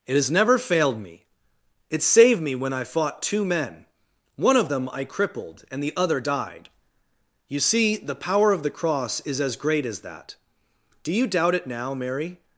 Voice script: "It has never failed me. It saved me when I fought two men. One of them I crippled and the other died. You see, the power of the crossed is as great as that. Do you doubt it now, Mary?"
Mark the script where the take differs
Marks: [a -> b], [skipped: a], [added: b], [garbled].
"It has never failed me. It saved me when I fought two men. One of them I crippled and the other died. You see, the power of the [crossed -> cross] is as great as that. Do you doubt it now, Mary?"